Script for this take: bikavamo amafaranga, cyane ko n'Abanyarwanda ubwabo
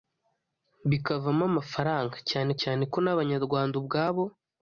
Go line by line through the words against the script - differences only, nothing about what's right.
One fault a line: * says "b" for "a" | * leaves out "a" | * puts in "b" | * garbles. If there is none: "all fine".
* puts in "cyane"